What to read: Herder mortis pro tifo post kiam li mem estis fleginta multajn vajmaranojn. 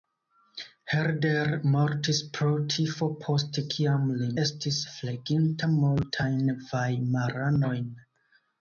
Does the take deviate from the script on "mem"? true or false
true